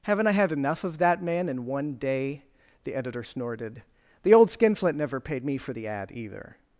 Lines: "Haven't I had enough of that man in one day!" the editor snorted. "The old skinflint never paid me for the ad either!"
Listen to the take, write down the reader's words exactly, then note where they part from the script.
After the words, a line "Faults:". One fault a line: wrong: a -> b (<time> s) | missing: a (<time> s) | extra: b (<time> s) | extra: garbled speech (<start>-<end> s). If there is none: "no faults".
"Haven't I had enough of that man in one day!" the editor snorted. "The old skinflint never paid me for the ad either!"
Faults:
no faults